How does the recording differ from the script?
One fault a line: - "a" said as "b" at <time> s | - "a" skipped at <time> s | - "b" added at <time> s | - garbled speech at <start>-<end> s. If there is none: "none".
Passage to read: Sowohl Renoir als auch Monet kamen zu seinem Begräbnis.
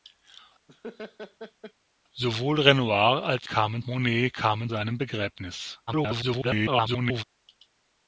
- "auch" said as "kamen" at 3.4 s
- "zu" skipped at 4.7 s
- garbled speech at 5.9-7.2 s